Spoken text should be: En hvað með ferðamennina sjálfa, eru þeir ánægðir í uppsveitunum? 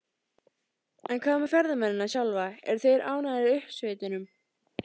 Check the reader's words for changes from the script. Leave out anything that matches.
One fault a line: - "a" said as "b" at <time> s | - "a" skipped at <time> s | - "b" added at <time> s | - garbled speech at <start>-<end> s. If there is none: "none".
none